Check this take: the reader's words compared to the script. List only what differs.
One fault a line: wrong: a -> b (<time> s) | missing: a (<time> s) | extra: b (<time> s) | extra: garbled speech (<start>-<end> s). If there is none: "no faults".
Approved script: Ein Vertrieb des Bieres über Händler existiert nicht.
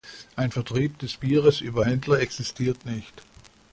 no faults